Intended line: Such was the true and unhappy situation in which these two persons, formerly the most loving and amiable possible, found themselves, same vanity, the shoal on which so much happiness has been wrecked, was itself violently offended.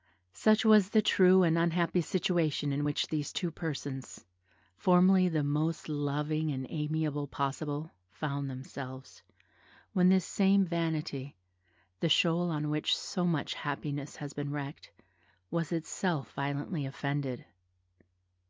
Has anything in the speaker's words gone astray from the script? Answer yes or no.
yes